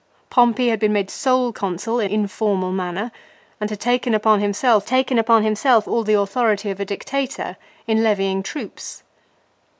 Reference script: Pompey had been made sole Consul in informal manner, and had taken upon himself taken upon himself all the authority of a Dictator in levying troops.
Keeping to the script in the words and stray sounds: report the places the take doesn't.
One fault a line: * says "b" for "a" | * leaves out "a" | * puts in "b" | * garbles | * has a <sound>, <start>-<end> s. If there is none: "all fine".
all fine